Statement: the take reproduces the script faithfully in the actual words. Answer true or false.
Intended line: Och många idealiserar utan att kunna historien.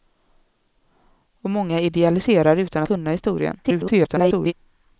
false